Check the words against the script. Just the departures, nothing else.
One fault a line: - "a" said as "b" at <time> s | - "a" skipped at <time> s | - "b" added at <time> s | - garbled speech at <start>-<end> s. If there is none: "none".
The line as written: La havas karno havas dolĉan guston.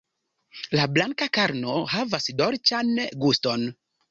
- "havas" said as "blanka" at 0.9 s